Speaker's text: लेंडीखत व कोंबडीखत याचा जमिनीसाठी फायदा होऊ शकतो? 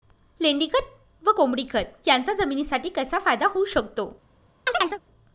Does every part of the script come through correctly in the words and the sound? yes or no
no